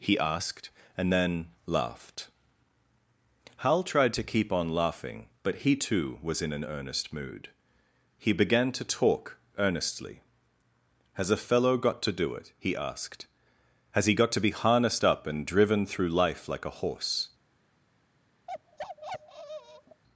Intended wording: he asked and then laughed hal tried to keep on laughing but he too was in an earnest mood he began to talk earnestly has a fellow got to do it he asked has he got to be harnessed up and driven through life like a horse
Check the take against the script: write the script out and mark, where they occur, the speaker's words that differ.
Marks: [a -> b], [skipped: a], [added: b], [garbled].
he asked and then laughed hal tried to keep on laughing but he too was in an earnest mood he began to talk earnestly has a fellow got to do it he asked has he got to be harnessed up and driven through life like a horse